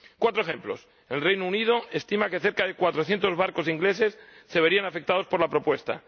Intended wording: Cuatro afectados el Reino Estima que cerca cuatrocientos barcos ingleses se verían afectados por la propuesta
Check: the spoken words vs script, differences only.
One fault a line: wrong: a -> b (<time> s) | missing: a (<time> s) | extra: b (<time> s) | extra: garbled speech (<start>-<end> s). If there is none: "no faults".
wrong: afectados -> ejemplos (0.4 s)
extra: Unido (1.4 s)
extra: de (2.6 s)